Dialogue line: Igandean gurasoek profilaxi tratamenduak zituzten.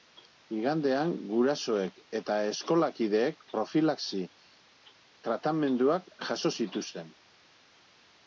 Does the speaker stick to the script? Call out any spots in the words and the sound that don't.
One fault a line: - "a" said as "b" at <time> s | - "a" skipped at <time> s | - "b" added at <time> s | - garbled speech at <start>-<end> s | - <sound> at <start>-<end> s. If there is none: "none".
- "eta eskolakideek" added at 2.2 s
- "jaso" added at 6.3 s